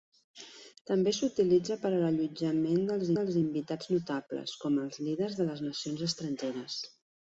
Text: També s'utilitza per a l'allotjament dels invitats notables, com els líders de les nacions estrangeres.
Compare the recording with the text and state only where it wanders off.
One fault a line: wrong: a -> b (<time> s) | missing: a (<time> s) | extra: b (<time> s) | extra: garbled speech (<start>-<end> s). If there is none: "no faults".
extra: dels (3.2 s)